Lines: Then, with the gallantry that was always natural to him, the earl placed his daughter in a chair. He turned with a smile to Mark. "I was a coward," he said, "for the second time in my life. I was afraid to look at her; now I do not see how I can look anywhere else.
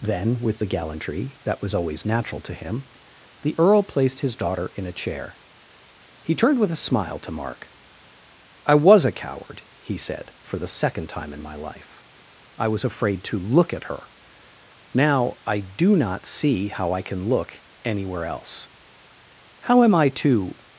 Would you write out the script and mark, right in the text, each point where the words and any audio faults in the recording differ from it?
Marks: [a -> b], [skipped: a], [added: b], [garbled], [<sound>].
Then, with the gallantry that was always natural to him, the earl placed his daughter in a chair. He turned with a smile to Mark. "I was a coward," he said, "for the second time in my life. I was afraid to look at her; now I do not see how I can look anywhere else. [added: How am I to]